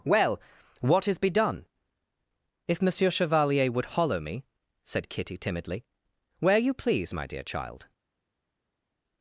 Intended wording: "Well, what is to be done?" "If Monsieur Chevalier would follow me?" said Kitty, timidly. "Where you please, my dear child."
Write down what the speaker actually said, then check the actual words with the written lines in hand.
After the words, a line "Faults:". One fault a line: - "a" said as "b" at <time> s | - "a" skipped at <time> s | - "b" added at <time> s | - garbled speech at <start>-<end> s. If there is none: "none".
"Well, what is be done?" "If Monsieur Chevalier would hollow me?" said Kitty, timidly. "Where you please, my dear child."
Faults:
- "to" skipped at 1.2 s
- "follow" said as "hollow" at 3.9 s